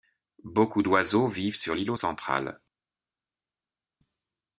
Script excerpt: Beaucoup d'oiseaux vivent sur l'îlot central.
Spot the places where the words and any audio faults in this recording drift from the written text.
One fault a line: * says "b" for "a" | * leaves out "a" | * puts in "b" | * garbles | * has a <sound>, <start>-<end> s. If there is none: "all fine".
all fine